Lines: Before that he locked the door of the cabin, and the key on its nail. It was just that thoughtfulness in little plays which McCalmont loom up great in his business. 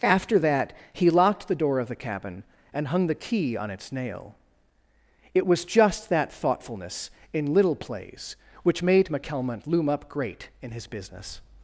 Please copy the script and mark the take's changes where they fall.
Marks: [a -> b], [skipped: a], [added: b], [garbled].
[Before -> After] that he locked the door of the cabin, and [added: hung] the key on its nail. It was just that thoughtfulness in little plays which [added: made] McCalmont loom up great in his business.